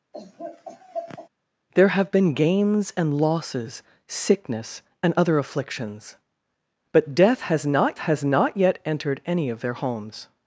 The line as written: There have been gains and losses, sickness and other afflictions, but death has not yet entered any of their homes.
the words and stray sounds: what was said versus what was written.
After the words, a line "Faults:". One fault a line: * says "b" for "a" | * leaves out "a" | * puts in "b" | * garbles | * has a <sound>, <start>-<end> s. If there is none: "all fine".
There have been gains and losses, sickness and other afflictions, but death has not has not yet entered any of their homes.
Faults:
* has a laugh, 0.1-1.3 s
* puts in "has not"